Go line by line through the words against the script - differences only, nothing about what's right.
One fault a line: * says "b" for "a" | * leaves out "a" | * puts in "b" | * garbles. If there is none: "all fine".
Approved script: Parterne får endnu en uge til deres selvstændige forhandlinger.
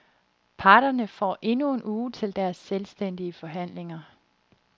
all fine